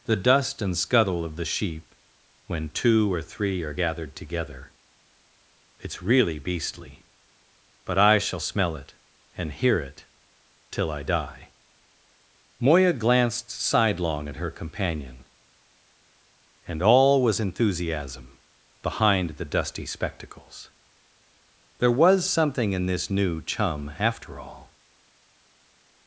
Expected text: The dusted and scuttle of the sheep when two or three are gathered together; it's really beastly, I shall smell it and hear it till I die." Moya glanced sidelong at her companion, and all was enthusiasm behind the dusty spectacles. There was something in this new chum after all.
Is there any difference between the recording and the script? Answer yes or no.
yes